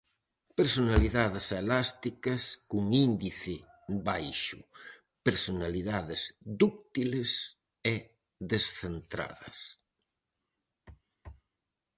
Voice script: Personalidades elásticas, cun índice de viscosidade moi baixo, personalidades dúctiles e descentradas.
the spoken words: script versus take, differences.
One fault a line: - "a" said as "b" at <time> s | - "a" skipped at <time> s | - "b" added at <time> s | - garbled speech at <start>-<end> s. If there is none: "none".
- "de viscosidade moi" skipped at 3.5 s